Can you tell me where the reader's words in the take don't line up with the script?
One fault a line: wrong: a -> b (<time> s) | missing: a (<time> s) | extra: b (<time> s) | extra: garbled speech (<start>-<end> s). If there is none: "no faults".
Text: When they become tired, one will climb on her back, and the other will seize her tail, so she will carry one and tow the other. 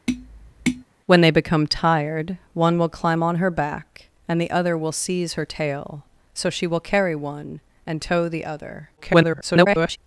extra: garbled speech (9.0-10.0 s)